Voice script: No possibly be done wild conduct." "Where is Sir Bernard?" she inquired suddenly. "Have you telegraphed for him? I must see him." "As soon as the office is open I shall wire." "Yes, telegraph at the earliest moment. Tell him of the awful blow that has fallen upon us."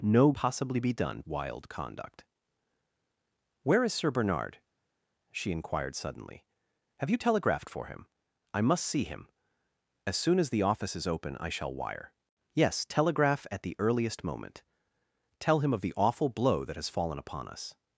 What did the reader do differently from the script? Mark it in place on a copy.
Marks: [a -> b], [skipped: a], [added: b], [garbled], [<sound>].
No possibly be done wild conduct." "Where is Sir Bernard?" she inquired suddenly. "Have you telegraphed for him? I must see him." "As soon as the office is open I shall wire." "Yes, telegraph at the earliest moment. Tell him of the awful blow that has fallen upon us."